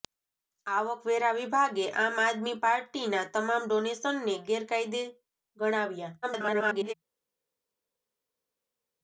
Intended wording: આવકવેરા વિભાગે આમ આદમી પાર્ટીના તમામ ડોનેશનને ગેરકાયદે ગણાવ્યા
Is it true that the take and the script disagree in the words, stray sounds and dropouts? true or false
true